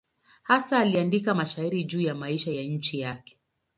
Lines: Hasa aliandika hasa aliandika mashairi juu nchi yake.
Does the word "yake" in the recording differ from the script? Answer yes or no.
no